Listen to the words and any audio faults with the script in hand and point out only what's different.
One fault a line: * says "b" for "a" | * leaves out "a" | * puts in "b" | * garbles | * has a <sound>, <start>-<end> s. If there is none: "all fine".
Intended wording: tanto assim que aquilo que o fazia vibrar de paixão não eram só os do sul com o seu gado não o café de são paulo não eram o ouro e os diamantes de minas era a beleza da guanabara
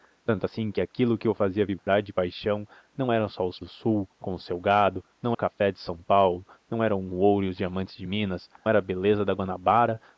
* has a dropout, 1.8-1.9 s